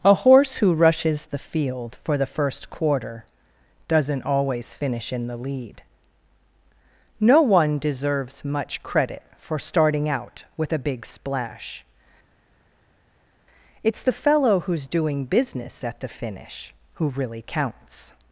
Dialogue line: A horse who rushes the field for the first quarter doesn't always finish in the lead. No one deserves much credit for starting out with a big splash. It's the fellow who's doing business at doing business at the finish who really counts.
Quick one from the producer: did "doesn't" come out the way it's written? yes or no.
yes